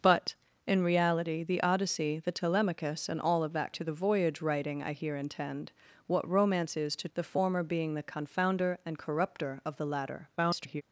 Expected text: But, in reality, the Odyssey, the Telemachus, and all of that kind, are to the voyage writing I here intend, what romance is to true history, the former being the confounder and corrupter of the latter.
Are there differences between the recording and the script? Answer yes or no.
yes